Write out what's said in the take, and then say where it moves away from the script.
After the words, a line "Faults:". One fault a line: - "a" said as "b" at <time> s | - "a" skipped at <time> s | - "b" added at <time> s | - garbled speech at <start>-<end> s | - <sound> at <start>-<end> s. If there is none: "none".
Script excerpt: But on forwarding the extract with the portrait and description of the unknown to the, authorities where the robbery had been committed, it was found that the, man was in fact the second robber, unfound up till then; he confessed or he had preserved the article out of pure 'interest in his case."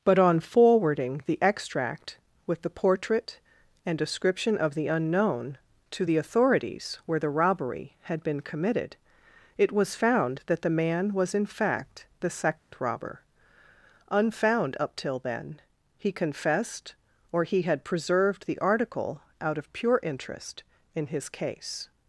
But on forwarding the extract with the portrait and description of the unknown to the, authorities where the robbery had been committed, it was found that the, man was in fact the second robber, unfound up till then; he confessed or he had preserved the article out of pure 'interest in his case."
Faults:
- dropout at 12.6-12.7 s